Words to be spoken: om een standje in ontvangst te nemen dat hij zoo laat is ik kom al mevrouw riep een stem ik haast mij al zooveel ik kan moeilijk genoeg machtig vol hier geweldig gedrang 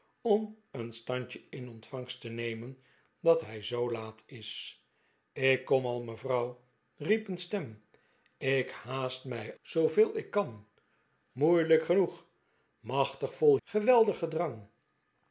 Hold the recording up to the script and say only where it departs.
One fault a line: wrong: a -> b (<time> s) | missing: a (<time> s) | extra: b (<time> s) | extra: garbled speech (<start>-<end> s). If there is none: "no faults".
missing: al (9.6 s)
missing: hier (13.6 s)